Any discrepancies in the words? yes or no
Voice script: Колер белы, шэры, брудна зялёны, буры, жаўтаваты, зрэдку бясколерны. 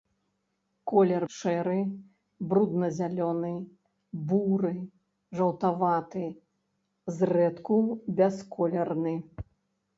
yes